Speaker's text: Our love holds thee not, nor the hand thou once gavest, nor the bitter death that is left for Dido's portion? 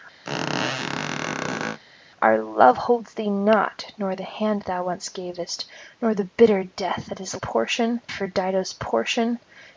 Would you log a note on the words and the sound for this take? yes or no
yes